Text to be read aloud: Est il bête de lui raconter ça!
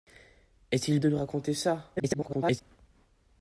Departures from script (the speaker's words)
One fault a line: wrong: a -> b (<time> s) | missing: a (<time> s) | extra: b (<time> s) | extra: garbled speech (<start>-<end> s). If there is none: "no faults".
missing: bête (1.0 s)
extra: garbled speech (2.0-2.6 s)